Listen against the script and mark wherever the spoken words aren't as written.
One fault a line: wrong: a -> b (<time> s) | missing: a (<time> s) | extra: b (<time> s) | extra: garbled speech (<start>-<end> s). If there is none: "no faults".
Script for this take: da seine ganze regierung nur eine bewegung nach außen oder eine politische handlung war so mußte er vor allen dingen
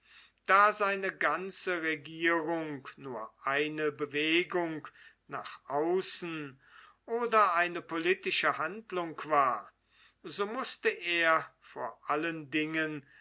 no faults